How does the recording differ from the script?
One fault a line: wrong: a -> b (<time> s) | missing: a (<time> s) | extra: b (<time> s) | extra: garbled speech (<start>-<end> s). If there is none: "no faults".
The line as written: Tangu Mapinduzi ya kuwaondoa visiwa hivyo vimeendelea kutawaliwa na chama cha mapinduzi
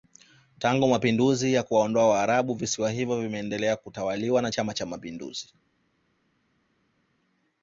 extra: waarabu (2.1 s)